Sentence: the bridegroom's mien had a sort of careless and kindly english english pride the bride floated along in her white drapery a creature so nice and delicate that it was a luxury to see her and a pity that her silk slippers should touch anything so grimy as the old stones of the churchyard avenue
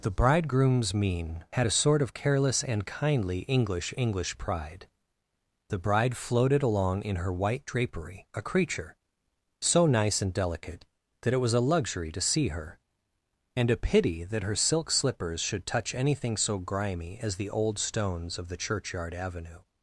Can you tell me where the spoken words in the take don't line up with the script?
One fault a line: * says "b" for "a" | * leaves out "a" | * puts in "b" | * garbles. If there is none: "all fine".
all fine